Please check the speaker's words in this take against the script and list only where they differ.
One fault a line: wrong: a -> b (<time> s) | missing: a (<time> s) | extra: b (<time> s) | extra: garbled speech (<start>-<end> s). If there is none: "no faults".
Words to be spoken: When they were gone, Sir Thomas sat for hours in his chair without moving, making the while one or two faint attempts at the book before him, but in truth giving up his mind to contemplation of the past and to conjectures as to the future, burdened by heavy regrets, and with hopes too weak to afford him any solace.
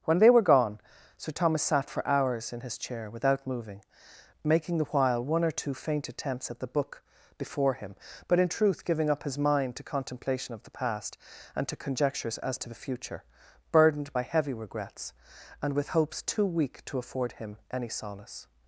no faults